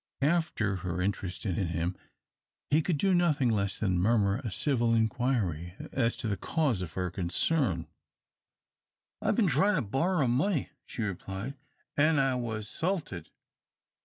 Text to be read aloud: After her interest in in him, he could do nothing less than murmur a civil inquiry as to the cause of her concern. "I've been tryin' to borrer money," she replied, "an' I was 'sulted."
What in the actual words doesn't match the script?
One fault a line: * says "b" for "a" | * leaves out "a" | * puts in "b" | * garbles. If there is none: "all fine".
all fine